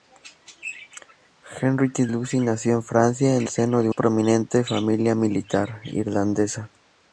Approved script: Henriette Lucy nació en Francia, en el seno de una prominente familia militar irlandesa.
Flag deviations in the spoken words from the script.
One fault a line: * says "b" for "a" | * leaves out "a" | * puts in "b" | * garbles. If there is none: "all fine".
* leaves out "el"
* leaves out "una"